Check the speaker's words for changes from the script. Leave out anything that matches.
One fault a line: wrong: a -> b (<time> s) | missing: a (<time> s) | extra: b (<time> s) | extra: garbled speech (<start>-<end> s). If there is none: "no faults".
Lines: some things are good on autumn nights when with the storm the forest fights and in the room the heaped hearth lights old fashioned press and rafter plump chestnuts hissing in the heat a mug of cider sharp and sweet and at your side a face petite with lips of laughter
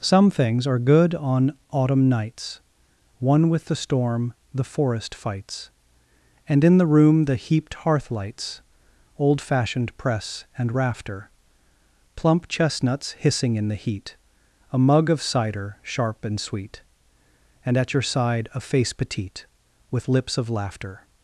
wrong: when -> one (3.2 s)